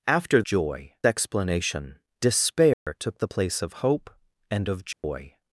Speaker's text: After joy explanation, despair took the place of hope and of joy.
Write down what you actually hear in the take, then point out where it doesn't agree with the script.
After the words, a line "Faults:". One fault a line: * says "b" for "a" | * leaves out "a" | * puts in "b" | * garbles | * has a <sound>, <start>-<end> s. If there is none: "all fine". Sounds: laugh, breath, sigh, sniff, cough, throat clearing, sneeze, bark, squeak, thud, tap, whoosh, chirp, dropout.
After joy explanation, despair took the place of hope and of joy.
Faults:
* has a dropout, 2.7-2.9 s
* has a dropout, 4.9-5.0 s